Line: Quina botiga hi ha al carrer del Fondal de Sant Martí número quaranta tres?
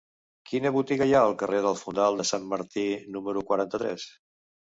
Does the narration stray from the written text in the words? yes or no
no